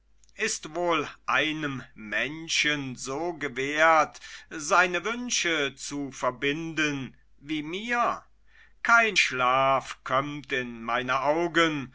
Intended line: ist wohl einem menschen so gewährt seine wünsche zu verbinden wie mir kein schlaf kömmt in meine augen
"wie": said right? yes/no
yes